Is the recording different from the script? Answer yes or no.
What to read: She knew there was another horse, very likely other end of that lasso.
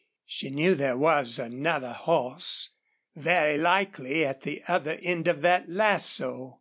yes